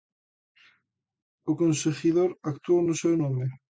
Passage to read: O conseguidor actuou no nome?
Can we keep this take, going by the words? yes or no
no